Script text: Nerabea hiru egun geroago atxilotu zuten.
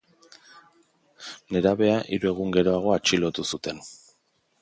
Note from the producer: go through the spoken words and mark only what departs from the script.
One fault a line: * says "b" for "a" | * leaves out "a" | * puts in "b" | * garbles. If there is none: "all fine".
all fine